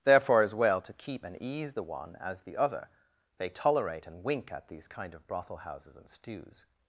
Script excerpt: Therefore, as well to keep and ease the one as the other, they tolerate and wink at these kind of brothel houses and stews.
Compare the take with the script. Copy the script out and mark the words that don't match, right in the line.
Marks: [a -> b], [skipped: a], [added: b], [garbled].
Therefore, as well to keep and ease the one as the other, they tolerate and wink at these kind of brothel houses and stews.